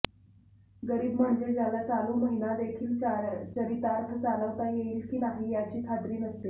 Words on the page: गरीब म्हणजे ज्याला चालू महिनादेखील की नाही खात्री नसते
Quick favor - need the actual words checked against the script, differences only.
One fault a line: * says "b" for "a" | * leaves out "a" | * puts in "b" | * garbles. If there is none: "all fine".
* puts in "चरितार्थ चालवता येईल"
* puts in "याची"